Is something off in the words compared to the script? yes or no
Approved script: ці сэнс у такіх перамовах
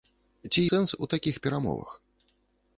no